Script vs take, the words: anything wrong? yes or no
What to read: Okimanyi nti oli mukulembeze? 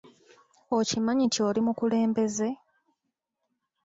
no